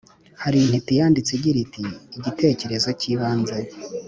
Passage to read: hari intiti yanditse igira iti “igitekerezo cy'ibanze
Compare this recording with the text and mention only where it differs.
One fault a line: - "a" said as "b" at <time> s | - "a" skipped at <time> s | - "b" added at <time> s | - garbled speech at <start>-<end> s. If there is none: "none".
none